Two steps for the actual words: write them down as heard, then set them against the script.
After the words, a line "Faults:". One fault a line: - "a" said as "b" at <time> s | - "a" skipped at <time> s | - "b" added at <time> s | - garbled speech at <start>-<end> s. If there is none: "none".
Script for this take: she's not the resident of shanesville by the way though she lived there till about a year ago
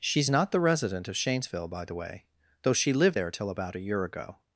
she's not the resident of shanesville by the way though she lived there till about a year ago
Faults:
none